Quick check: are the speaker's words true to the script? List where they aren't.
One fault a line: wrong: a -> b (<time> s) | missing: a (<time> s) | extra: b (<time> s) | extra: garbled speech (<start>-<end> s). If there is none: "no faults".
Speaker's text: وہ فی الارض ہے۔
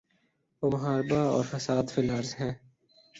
extra: محاربہ اور فساد (0.7 s)